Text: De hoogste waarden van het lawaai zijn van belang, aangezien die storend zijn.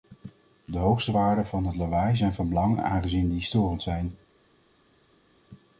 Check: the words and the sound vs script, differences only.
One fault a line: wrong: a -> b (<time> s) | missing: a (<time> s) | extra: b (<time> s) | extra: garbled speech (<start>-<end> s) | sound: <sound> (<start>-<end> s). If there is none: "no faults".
no faults